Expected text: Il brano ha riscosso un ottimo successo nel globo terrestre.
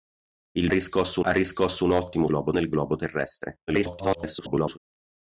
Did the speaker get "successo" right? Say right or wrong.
wrong